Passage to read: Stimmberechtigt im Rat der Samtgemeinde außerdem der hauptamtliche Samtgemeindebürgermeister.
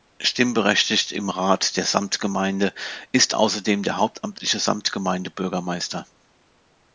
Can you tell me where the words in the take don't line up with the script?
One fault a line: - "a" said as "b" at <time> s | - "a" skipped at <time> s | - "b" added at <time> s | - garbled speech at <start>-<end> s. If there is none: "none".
- "ist" added at 3.1 s